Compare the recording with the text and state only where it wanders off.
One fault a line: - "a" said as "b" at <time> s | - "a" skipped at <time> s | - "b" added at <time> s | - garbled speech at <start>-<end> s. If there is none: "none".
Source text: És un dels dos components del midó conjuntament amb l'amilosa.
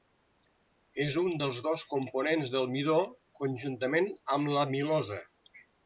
none